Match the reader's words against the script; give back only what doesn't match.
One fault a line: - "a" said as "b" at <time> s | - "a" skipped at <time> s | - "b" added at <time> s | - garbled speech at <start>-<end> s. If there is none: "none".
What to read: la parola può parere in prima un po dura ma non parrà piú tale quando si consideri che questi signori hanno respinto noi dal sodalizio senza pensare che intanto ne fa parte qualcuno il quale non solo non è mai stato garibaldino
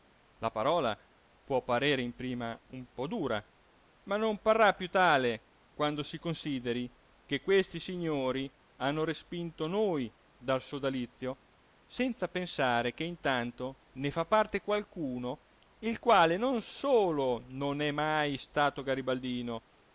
none